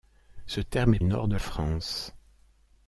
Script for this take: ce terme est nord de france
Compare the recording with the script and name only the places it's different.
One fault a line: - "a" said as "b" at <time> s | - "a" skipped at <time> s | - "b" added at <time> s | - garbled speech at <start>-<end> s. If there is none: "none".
none